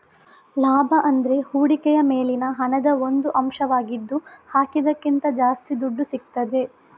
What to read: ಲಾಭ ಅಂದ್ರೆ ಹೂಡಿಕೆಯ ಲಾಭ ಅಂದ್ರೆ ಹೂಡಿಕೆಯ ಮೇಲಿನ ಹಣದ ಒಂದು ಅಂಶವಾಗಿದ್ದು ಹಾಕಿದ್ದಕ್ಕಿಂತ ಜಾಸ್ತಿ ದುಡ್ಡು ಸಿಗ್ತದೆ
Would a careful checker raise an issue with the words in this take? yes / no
yes